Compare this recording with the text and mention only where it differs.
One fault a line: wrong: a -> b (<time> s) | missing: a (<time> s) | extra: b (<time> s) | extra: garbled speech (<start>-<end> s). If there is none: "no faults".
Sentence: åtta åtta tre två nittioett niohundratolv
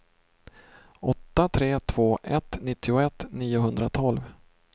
missing: åtta (1.5 s)
extra: ett (2.2 s)